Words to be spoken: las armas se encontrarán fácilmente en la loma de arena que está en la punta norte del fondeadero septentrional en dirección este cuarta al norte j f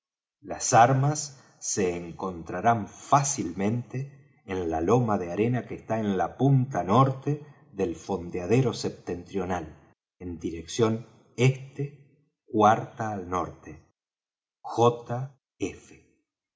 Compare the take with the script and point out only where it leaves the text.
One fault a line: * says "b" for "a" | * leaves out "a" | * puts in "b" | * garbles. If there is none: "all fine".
all fine